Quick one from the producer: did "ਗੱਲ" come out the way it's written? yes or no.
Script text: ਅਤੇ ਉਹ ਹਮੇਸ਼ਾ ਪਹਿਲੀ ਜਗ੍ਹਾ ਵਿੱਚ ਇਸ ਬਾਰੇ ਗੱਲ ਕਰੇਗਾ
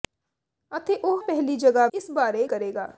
no